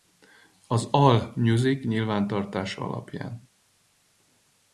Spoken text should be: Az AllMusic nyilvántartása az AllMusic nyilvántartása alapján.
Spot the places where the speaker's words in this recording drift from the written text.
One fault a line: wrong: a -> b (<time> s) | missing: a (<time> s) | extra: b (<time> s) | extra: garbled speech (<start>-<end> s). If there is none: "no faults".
missing: az AllMusic nyilvántartása (2.8 s)